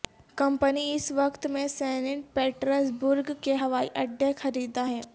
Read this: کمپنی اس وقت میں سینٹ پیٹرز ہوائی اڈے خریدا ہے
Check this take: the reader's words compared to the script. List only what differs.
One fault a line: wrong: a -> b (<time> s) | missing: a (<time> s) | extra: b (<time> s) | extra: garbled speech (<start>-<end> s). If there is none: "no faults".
extra: برگ کے (3.0 s)